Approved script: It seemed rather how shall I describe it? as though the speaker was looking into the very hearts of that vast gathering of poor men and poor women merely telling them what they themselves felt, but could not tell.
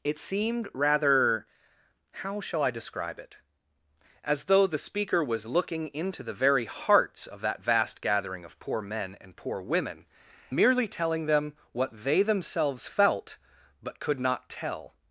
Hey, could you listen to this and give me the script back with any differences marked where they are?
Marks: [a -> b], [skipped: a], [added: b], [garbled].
It seemed rather how shall I describe it? as though the speaker was looking into the very hearts of that vast gathering of poor men and poor women merely telling them what they themselves felt, but could not tell.